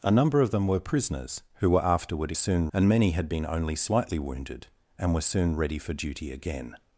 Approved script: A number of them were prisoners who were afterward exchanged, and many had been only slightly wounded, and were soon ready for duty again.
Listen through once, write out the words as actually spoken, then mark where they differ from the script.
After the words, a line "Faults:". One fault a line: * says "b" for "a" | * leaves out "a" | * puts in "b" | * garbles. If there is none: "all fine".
A number of them were prisoners who were afterward soon, and many had been only slightly wounded, and were soon ready for duty again.
Faults:
* says "soon" for "exchanged"